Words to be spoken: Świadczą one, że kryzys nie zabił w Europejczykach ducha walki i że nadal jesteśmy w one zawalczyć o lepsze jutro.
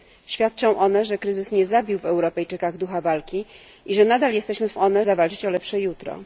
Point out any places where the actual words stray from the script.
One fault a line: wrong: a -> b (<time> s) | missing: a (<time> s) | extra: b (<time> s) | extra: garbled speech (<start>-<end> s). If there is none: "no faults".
no faults